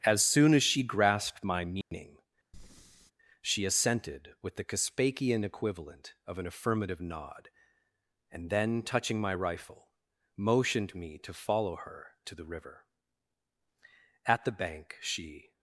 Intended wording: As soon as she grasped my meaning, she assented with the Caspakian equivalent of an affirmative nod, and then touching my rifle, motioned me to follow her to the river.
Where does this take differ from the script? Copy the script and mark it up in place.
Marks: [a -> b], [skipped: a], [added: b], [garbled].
As soon as she grasped my meaning, she assented with the Caspakian equivalent of an affirmative nod, and then touching my rifle, motioned me to follow her to the river. [added: At the bank she]